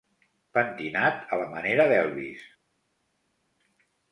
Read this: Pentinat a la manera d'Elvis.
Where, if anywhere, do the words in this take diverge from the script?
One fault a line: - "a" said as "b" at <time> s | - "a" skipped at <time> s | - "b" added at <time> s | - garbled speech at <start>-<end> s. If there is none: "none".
none